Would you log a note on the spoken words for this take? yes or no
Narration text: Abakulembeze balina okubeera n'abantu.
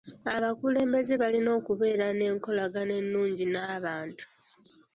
yes